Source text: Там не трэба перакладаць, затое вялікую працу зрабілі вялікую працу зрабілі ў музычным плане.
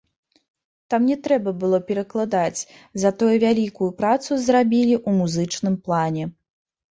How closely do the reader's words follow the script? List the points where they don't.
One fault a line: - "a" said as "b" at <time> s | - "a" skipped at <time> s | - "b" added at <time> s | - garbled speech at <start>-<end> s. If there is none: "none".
- "было" added at 1.6 s
- "вялікую працу зрабілі" skipped at 4.9 s